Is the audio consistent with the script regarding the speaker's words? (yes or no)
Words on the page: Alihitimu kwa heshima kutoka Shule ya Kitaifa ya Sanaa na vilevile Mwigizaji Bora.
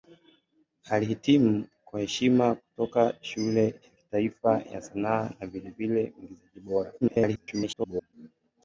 no